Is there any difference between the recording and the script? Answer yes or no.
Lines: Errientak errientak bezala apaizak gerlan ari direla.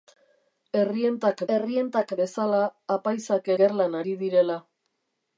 no